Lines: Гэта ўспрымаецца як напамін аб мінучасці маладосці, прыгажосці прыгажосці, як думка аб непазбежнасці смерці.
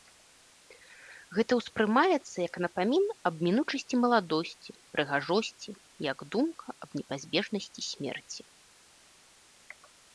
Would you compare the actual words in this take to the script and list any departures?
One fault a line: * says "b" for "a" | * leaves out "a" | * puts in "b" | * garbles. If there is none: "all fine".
* leaves out "прыгажосці"